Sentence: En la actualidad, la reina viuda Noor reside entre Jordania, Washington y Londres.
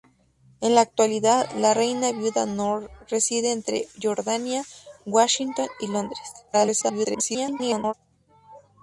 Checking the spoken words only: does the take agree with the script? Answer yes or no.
no